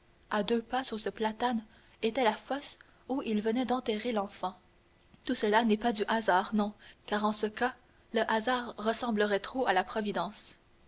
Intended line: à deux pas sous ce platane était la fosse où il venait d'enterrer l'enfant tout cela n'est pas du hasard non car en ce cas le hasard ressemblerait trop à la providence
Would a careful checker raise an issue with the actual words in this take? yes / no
no